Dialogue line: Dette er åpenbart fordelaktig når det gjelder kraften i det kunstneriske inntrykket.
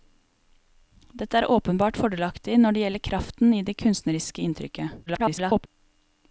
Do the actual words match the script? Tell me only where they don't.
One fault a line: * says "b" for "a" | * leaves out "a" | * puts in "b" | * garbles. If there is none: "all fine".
* garbles